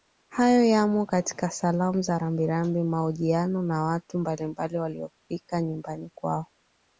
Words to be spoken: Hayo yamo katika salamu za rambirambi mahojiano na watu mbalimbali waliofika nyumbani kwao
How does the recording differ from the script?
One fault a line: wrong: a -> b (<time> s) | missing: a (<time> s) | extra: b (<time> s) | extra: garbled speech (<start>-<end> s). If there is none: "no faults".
no faults